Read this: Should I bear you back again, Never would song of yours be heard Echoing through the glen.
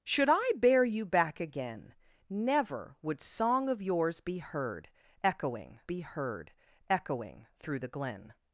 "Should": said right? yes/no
yes